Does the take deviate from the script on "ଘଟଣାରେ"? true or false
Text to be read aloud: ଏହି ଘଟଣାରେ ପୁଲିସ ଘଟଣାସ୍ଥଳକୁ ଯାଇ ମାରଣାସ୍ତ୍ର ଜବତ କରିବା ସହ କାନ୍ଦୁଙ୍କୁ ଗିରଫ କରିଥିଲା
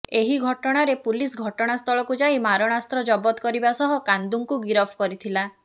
false